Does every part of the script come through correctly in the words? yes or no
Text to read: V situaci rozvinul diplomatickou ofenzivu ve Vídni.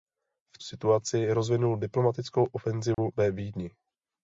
yes